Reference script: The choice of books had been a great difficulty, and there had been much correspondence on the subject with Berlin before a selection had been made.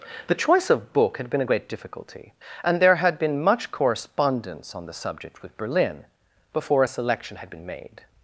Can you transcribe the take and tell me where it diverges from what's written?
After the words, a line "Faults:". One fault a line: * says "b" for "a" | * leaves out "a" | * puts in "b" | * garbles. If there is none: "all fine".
The choice of book had been a great difficulty, and there had been much correspondence on the subject with Berlin before a selection had been made.
Faults:
* says "book" for "books"